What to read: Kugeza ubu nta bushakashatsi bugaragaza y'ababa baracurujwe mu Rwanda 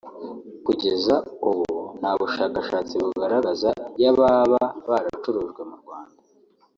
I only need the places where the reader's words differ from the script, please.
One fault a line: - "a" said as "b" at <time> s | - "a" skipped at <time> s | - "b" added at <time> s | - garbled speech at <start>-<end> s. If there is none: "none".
none